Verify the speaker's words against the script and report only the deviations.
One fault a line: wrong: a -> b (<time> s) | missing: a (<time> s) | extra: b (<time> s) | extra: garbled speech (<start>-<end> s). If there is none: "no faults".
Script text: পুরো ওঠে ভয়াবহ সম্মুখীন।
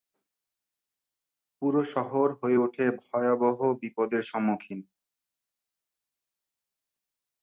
extra: শহর হয়ে (1.9 s)
extra: বিপদের (3.8 s)